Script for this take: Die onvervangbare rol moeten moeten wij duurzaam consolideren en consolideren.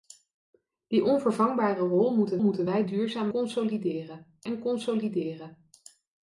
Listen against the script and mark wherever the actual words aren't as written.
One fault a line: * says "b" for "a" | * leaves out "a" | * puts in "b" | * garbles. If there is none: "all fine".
all fine